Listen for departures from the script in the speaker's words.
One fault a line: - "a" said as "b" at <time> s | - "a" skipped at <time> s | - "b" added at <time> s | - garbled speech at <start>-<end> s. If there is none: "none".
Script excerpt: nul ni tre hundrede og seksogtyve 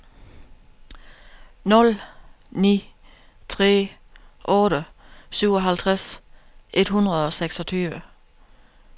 - "otte syvoghalvtreds et" added at 4.4 s